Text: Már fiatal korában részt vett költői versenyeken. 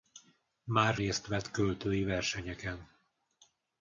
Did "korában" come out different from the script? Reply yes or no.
yes